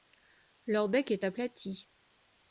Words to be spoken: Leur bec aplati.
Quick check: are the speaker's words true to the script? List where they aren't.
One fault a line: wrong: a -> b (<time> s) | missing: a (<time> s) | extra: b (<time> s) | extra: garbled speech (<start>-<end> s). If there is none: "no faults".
extra: est (1.1 s)